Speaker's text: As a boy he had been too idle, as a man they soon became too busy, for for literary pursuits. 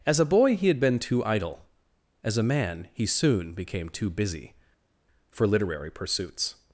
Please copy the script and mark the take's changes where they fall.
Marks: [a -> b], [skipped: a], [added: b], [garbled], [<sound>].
As a boy he had been too idle, as a man [they -> he] soon became too busy, for [skipped: for] literary pursuits.